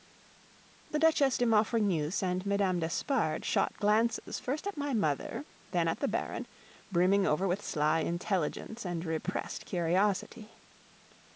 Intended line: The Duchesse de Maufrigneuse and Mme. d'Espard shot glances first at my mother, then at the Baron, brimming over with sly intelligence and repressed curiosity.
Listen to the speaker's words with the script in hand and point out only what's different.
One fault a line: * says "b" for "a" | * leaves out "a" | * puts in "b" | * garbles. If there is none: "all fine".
all fine